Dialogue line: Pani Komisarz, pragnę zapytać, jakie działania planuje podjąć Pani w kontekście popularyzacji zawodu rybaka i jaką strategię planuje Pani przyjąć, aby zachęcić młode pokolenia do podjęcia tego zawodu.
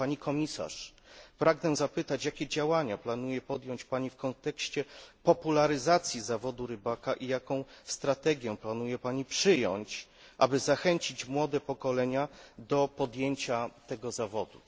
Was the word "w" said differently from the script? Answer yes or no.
no